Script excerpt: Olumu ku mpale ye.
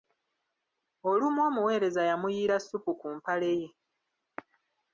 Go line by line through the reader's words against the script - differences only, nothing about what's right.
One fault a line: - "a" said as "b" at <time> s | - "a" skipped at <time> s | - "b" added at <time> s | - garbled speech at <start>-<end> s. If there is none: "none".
- "omuweereza yamuyiira ssupu" added at 1.5 s